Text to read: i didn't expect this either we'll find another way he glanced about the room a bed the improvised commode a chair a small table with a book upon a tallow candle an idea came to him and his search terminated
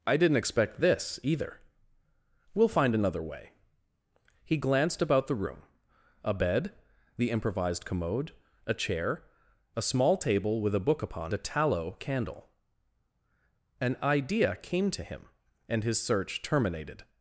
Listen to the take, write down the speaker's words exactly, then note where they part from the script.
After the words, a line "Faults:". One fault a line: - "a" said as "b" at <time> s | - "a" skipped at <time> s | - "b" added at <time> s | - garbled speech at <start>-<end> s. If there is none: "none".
i didn't expect this either we'll find another way he glanced about the room a bed the improvised commode a chair a small table with a book upon a tallow candle an idea came to him and his search terminated
Faults:
none